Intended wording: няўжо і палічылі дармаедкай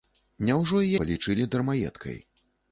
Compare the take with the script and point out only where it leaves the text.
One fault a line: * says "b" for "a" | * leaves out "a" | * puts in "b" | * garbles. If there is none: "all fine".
all fine